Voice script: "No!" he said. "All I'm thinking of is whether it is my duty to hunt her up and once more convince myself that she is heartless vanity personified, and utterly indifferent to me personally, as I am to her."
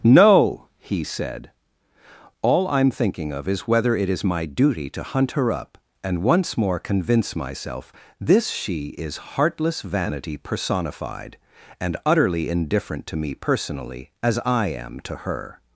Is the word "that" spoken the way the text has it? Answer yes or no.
no